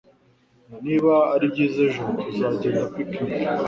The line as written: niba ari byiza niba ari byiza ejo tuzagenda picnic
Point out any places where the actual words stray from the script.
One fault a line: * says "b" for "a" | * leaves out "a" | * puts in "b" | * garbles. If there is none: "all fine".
* leaves out "niba ari byiza"